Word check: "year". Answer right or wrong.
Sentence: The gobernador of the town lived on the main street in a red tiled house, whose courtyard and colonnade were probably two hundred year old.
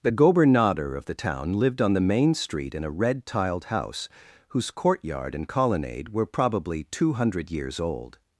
wrong